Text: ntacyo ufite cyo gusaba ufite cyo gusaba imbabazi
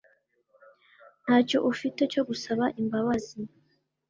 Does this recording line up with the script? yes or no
no